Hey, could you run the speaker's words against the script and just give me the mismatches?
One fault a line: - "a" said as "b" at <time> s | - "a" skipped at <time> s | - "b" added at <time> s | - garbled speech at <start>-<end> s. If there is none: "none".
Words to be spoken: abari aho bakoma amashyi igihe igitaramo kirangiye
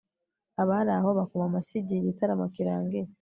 none